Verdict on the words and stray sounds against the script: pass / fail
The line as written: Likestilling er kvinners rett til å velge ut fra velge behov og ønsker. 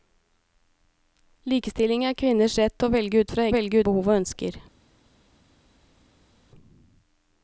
pass